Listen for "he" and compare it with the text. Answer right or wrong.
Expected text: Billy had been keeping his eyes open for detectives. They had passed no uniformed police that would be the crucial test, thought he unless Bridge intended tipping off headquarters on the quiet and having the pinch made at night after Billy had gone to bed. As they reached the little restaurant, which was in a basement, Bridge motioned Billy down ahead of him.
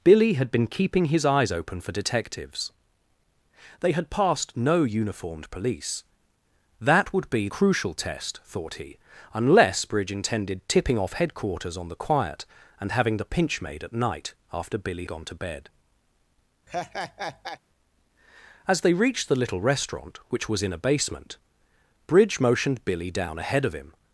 right